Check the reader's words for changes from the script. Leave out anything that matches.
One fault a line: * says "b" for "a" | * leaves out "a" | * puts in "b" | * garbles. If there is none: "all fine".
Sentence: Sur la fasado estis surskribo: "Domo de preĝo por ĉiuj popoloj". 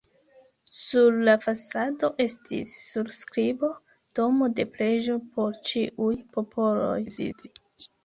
* garbles